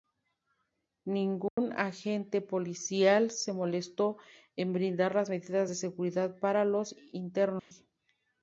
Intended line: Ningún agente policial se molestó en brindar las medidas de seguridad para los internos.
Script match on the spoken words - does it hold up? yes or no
yes